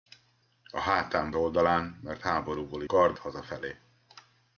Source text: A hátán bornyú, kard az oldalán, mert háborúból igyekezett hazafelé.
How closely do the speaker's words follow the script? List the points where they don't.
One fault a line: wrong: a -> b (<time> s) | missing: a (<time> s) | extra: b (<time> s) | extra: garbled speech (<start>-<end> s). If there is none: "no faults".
missing: bornyú kard az (1.3 s)
wrong: igyekezett -> kard (2.9 s)